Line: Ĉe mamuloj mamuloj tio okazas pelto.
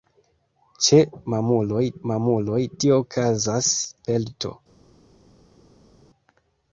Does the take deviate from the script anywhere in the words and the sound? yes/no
no